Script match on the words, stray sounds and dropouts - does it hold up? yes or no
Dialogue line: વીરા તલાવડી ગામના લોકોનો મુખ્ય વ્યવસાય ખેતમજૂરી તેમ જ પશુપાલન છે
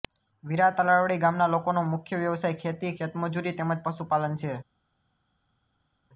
no